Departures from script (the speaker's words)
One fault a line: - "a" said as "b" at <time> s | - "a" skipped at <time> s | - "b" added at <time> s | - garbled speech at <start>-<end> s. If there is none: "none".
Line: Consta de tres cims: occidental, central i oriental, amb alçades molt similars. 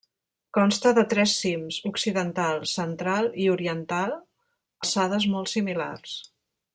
- "amb" skipped at 4.2 s